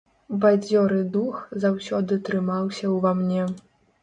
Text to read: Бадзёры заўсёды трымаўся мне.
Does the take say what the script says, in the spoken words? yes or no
no